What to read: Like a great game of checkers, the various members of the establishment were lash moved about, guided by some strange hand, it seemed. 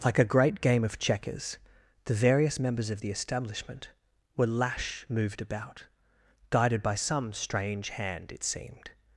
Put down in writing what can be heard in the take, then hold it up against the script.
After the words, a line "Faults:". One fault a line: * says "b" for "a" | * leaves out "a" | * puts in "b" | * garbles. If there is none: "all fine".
Like a great game of checkers, the various members of the establishment were lash moved about, guided by some strange hand, it seemed.
Faults:
all fine